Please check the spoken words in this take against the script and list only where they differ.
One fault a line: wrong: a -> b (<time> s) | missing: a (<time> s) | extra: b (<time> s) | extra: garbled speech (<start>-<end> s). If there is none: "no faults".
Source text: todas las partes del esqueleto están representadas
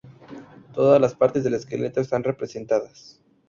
no faults